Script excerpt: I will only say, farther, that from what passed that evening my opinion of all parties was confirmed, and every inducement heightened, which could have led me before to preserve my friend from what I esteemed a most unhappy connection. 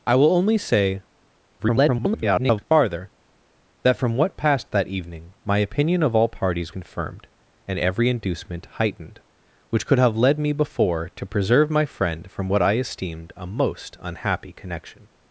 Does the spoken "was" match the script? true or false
false